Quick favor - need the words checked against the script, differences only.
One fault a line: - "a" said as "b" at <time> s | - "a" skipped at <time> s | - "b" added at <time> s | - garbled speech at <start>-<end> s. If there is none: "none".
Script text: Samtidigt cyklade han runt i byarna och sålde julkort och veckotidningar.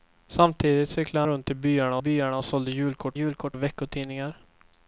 - "han" skipped at 1.3 s
- "byarna" added at 2.0 s
- "julkort" added at 3.1 s